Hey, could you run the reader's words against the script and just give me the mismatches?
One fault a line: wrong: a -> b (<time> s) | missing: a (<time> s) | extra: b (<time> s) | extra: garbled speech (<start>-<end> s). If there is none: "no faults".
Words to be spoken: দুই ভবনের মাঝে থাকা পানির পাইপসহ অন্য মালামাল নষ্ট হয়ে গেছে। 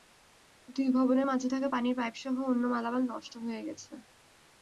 no faults